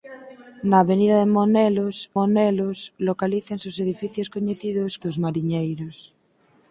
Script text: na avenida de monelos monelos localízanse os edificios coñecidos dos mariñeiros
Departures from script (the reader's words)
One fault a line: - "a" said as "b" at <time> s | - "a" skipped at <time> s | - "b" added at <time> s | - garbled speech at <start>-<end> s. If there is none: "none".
none